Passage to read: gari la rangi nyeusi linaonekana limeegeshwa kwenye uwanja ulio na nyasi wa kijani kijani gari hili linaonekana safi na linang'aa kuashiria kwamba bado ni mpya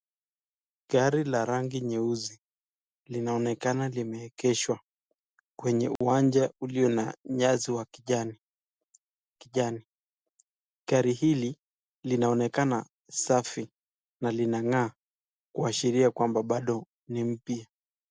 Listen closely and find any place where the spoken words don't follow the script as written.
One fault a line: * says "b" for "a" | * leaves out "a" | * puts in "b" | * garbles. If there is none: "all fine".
all fine